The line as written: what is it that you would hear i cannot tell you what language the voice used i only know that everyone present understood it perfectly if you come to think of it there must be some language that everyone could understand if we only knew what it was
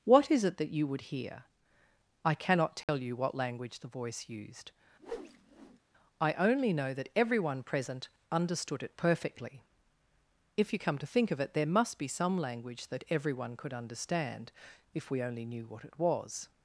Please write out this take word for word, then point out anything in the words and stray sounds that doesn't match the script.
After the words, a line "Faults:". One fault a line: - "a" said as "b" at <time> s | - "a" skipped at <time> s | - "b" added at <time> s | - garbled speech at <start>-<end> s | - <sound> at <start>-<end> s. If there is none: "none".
what is it that you would hear i cannot tell you what language the voice used i only know that everyone present understood it perfectly if you come to think of it there must be some language that everyone could understand if we only knew what it was
Faults:
- dropout at 2.8-2.9 s
- whoosh at 5.0-5.8 s